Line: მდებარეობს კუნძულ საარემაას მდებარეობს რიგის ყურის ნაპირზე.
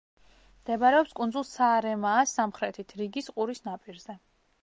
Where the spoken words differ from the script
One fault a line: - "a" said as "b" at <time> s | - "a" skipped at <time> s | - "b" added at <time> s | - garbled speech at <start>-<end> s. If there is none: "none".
- "მდებარეობს" said as "სამხრეთით" at 2.4 s